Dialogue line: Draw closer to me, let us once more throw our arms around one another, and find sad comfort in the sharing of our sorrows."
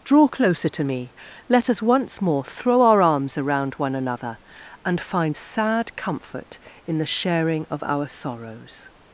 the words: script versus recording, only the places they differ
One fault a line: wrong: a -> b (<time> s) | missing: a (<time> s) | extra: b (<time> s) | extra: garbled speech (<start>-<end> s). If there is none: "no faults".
no faults